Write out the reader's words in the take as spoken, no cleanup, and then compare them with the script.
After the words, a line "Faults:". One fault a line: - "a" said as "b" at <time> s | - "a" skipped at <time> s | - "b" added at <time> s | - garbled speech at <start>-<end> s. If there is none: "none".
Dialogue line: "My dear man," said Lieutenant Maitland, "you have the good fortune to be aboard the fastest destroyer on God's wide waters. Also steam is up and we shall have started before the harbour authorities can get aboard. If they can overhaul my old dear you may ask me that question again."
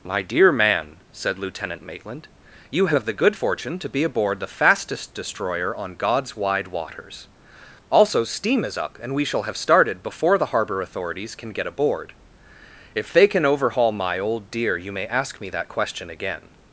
"My dear man," said Lieutenant Maitland, "you have the good fortune to be aboard the fastest destroyer on God's wide waters. Also steam is up and we shall have started before the harbour authorities can get aboard. If they can overhaul my old dear you may ask me that question again."
Faults:
none